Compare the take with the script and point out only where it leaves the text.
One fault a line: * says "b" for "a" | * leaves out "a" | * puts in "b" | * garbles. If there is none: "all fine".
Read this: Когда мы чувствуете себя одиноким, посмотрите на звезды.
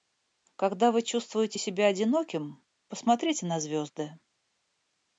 * says "вы" for "мы"